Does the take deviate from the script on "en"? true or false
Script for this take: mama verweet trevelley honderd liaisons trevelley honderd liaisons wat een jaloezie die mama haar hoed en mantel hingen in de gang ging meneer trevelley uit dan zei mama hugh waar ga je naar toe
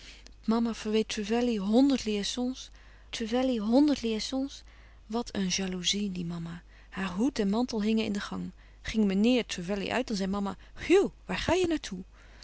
false